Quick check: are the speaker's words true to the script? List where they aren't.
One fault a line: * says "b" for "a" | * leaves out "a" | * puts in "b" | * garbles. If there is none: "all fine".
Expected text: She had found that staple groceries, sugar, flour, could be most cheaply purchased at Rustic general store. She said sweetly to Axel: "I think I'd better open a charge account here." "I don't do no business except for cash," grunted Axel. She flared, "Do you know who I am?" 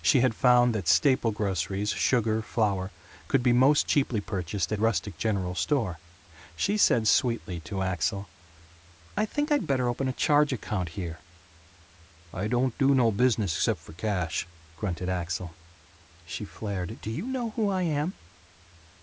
all fine